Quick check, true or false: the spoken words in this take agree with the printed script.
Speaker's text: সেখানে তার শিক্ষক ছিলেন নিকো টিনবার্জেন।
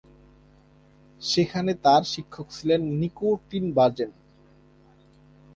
true